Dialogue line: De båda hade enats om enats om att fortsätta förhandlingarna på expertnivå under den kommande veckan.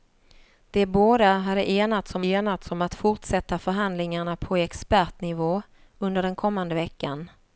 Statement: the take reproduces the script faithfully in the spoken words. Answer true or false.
true